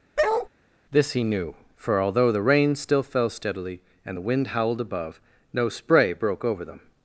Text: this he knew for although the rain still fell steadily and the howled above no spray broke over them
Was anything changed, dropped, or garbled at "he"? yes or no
no